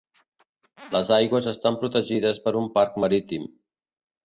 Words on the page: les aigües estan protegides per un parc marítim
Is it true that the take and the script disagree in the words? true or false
false